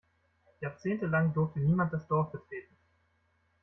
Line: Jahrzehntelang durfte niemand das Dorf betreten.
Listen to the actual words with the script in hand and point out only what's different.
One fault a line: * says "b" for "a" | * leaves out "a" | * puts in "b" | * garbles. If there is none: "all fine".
all fine